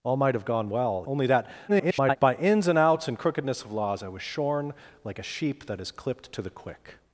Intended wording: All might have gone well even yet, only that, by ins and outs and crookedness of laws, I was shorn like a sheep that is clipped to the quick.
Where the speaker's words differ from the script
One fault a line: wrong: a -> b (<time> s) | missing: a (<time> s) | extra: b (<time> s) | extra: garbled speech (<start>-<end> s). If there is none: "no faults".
missing: even yet (1.1 s)
extra: garbled speech (1.7-2.2 s)